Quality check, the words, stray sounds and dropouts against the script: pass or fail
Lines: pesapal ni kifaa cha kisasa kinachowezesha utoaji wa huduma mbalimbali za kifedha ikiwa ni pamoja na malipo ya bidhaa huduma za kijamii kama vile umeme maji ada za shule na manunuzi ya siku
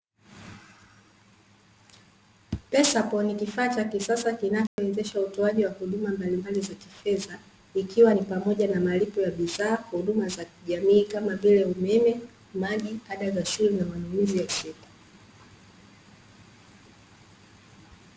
fail